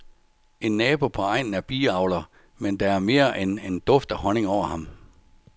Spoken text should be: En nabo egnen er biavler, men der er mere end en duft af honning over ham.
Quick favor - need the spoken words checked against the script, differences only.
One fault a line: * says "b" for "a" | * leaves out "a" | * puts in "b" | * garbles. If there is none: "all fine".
* puts in "på"